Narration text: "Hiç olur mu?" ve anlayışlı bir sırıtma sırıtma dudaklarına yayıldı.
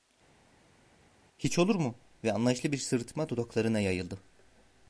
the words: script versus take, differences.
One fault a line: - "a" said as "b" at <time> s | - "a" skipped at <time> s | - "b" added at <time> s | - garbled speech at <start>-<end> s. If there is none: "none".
- "sırıtma" skipped at 3.3 s